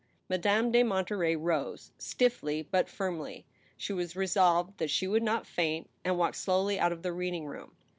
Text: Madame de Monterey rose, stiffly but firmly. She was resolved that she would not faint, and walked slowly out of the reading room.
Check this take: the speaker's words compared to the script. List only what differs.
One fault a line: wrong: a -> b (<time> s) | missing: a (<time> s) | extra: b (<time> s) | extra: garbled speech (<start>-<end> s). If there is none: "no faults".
no faults